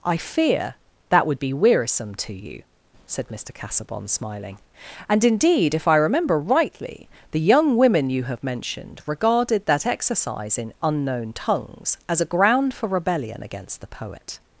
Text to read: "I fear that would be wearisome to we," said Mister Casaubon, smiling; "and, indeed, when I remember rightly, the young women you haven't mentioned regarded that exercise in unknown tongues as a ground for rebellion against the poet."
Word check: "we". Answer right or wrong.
wrong